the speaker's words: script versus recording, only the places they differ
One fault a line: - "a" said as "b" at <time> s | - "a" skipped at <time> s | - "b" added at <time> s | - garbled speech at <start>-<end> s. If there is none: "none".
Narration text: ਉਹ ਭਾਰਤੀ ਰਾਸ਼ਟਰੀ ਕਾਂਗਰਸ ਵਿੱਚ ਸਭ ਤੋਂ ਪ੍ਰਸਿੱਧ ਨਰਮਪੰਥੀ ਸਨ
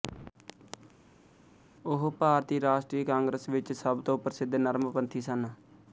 none